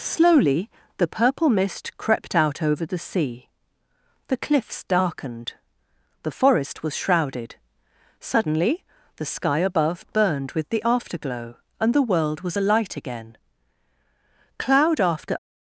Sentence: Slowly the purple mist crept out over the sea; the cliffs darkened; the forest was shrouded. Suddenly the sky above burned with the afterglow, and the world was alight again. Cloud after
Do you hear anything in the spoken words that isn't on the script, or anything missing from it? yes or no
no